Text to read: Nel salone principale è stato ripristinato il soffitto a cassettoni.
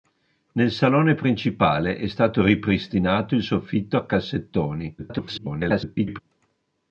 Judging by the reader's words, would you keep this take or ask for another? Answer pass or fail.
fail